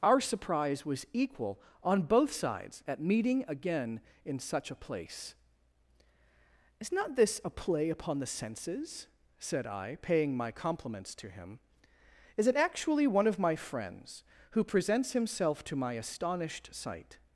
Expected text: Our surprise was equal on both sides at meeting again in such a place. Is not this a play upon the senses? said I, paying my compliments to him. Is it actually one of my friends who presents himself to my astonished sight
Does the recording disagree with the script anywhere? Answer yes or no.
no